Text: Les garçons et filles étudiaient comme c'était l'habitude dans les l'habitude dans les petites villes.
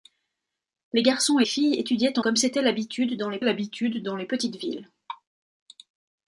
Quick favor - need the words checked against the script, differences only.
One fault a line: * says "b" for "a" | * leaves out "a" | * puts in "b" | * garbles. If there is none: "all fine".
all fine